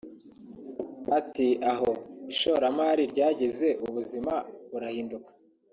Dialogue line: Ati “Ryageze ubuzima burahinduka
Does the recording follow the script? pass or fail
fail